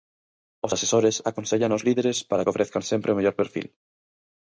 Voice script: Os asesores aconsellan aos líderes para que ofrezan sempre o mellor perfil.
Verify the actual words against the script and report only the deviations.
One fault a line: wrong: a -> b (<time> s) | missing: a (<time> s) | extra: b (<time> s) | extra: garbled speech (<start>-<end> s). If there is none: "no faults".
no faults